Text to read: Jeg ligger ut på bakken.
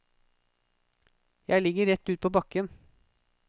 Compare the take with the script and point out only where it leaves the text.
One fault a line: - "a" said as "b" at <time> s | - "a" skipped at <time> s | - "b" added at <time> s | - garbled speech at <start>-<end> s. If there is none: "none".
- "rett" added at 1.9 s